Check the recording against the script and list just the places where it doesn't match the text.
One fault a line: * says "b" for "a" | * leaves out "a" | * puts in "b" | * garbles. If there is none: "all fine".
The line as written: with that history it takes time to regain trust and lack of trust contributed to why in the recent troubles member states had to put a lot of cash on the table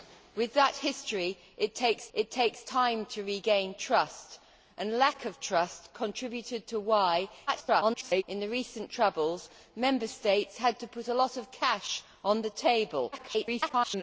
* puts in "it takes"
* garbles
* garbles